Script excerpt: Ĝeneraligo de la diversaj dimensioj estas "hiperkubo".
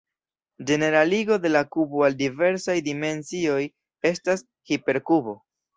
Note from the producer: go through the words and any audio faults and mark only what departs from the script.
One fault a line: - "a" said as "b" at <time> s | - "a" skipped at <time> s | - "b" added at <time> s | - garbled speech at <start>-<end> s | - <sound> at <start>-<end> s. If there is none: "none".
- "kubo al" added at 1.8 s